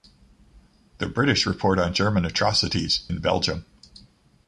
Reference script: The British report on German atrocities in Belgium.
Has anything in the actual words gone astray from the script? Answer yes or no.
no